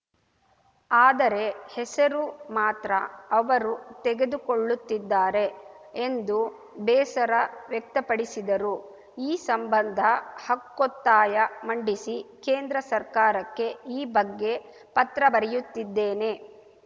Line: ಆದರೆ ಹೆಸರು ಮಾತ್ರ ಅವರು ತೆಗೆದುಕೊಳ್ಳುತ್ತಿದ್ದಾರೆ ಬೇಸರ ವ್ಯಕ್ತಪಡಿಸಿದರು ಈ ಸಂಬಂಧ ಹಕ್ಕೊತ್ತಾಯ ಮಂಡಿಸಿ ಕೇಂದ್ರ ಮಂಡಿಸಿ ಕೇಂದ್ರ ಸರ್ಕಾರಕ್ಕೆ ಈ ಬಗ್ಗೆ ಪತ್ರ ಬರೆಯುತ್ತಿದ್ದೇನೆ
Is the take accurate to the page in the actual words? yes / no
no